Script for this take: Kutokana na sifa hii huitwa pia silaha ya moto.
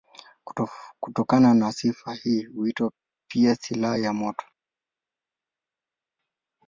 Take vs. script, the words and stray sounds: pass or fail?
pass